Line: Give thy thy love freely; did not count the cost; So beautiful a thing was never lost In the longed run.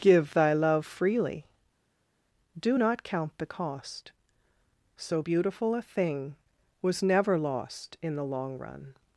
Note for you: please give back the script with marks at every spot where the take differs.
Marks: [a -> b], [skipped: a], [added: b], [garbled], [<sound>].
Give thy [skipped: thy] love freely; [did -> do] not count the cost; So beautiful a thing was never lost In the [longed -> long] run.